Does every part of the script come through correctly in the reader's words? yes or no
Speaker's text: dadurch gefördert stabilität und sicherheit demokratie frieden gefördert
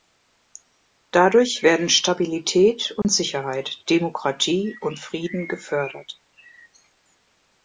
no